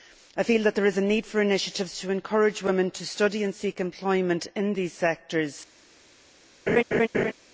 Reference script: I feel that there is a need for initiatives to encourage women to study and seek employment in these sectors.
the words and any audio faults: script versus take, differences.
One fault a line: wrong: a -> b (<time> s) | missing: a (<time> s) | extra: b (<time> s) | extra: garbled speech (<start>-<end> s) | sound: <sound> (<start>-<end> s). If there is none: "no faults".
sound: laugh (6.7-7.3 s)